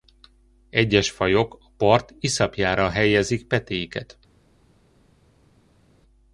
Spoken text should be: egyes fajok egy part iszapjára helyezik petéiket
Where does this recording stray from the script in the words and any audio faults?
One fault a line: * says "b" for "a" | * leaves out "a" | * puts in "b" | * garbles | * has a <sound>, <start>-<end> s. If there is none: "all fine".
* says "a" for "egy"